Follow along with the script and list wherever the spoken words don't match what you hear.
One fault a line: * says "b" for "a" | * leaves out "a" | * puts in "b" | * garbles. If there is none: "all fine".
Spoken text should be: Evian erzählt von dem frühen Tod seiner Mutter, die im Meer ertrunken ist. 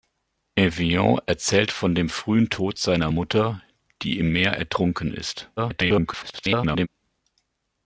* garbles